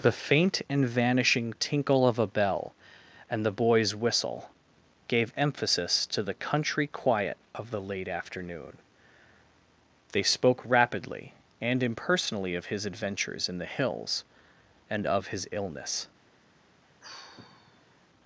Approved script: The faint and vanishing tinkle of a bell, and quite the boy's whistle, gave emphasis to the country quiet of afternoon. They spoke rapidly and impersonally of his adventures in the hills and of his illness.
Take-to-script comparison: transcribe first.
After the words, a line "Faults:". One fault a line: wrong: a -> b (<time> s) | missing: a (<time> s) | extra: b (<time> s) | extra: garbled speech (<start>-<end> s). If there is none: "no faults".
The faint and vanishing tinkle of a bell, and the boy's whistle, gave emphasis to the country quiet of the late afternoon. They spoke rapidly and impersonally of his adventures in the hills and of his illness.
Faults:
missing: quite (3.5 s)
extra: the late (7.7 s)